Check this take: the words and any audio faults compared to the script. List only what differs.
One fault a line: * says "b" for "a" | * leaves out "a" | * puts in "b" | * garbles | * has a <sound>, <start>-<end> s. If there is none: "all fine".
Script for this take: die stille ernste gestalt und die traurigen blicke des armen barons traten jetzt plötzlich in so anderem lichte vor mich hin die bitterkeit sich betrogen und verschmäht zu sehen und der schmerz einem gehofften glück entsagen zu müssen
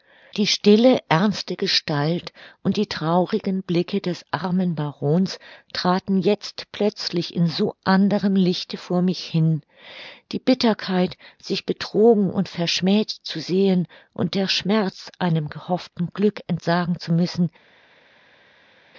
all fine